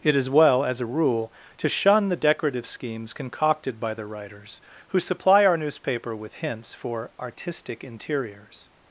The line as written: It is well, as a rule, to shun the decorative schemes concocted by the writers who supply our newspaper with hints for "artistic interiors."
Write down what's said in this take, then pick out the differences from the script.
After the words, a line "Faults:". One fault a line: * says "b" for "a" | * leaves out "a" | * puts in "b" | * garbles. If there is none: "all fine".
It is well, as a rule, to shun the decorative schemes concocted by the writers who supply our newspaper with hints for "artistic interiors."
Faults:
all fine